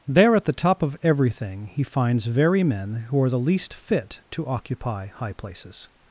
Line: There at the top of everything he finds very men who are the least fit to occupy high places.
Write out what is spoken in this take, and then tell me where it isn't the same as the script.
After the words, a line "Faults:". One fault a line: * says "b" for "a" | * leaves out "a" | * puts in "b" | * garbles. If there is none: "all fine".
There at the top of everything he finds very men who are the least fit to occupy high places.
Faults:
all fine